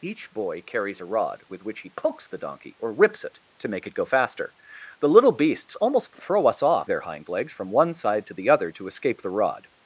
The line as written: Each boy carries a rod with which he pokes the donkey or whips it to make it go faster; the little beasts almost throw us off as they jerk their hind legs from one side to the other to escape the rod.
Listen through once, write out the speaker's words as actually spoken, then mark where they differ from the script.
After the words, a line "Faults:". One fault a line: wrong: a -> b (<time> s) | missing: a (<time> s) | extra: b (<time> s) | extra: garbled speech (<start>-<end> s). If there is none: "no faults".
Each boy carries a rod with which he pokes the donkey or whips it to make it go faster; the little beasts almost throw us off their hind legs from one side to the other to escape the rod.
Faults:
missing: as they jerk (6.9 s)